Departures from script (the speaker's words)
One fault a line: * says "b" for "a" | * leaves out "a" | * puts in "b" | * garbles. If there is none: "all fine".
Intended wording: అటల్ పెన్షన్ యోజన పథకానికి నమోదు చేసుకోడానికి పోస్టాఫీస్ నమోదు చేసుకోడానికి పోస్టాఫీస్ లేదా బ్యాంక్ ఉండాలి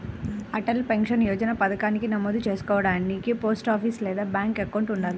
* leaves out "నమోదు చేసుకోడానికి పోస్టాఫీస్"
* puts in "అకౌంట్"